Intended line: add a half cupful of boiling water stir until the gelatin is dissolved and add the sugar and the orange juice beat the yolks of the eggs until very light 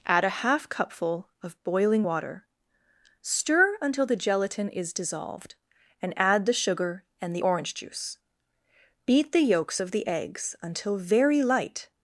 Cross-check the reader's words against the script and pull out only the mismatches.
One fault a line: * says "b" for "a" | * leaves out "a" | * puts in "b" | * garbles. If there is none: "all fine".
all fine